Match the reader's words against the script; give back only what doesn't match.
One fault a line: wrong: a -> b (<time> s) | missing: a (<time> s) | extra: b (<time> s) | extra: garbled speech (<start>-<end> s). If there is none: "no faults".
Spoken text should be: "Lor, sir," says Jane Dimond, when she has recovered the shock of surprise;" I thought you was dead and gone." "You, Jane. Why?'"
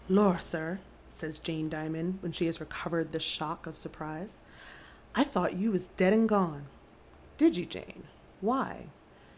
extra: Did (7.4 s)